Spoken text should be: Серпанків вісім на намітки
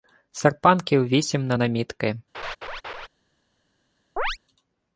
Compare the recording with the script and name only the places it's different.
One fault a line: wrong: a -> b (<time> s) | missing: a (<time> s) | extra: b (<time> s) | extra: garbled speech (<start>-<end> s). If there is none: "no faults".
no faults